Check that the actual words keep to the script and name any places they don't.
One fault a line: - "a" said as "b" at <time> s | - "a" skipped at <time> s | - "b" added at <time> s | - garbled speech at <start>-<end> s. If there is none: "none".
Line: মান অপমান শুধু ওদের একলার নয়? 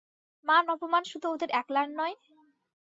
none